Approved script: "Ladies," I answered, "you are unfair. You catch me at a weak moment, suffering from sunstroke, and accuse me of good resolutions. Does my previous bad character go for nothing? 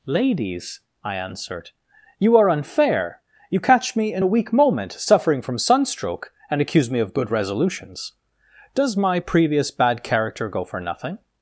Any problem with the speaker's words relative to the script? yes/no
yes